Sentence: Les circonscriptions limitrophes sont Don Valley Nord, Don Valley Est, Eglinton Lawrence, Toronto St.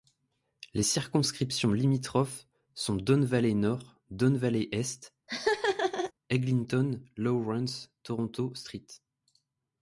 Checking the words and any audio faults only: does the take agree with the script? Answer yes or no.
no